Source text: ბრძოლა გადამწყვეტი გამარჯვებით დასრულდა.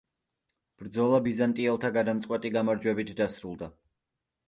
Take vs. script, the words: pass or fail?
fail